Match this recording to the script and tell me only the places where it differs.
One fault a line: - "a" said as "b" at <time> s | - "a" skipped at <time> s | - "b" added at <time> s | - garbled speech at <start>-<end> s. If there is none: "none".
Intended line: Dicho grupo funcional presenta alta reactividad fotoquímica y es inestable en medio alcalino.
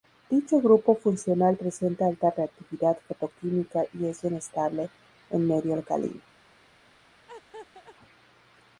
none